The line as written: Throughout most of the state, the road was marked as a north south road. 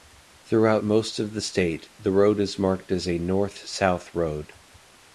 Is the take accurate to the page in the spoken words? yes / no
no